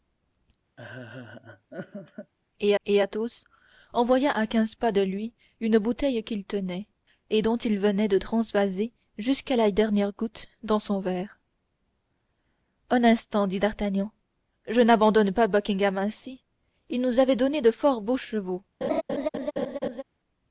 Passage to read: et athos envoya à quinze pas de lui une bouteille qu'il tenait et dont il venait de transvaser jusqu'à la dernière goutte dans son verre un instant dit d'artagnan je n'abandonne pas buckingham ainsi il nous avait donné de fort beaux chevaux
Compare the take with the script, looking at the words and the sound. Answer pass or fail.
fail